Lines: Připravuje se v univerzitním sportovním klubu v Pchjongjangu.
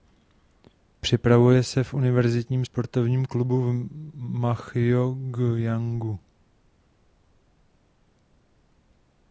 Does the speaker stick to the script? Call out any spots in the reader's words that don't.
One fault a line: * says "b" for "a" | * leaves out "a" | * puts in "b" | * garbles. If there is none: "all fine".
all fine